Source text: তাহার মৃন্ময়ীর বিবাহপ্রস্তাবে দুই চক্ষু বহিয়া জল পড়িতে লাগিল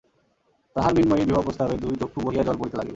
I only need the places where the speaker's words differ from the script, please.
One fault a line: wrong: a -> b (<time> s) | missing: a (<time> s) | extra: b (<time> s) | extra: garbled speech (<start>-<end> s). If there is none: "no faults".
no faults